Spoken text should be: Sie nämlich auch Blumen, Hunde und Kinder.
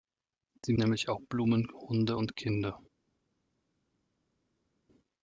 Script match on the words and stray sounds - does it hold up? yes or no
yes